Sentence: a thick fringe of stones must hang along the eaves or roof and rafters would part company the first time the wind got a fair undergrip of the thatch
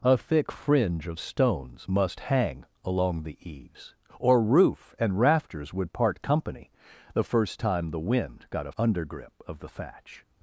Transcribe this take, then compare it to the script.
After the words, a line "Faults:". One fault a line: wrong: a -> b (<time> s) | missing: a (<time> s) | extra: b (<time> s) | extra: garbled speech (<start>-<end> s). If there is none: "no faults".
a thick fringe of stones must hang along the eaves or roof and rafters would part company the first time the wind got a undergrip of the thatch
Faults:
missing: fair (8.7 s)